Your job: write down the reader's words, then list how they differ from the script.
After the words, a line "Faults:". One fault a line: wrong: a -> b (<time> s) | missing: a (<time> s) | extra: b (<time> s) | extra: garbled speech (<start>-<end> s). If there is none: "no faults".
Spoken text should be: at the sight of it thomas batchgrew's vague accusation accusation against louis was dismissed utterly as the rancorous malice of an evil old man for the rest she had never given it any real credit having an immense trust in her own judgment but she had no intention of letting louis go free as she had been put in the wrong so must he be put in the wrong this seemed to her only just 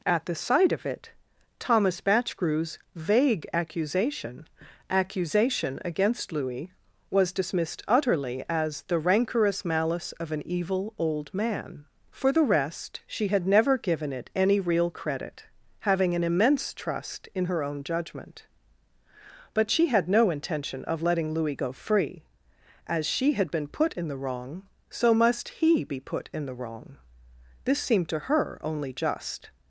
at the sight of it thomas batchgrew's vague accusation accusation against louis was dismissed utterly as the rancorous malice of an evil old man for the rest she had never given it any real credit having an immense trust in her own judgment but she had no intention of letting louis go free as she had been put in the wrong so must he be put in the wrong this seemed to her only just
Faults:
no faults